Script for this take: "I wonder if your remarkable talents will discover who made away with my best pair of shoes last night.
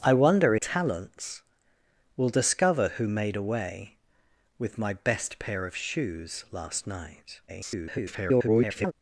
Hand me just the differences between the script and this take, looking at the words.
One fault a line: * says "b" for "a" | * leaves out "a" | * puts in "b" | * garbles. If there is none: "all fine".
* leaves out "if your remarkable"
* garbles